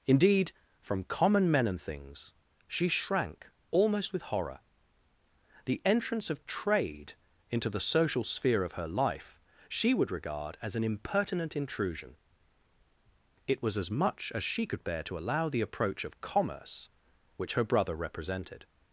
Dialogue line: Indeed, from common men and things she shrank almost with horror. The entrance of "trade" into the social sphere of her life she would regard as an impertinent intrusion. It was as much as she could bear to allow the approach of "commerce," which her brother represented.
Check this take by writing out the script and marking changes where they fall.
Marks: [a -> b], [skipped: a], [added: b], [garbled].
Indeed, from common men and things she shrank almost with horror. The entrance of "trade" into the social sphere of her life she would regard as an impertinent intrusion. It was as much as she could bear to allow the approach of "commerce," which her brother represented.